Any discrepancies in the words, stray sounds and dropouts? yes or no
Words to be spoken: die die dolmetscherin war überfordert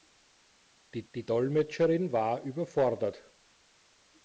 no